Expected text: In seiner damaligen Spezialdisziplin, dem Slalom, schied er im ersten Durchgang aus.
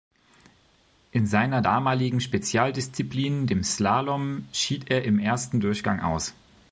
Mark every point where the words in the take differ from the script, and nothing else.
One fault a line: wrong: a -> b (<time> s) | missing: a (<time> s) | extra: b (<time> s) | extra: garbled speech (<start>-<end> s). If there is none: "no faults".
no faults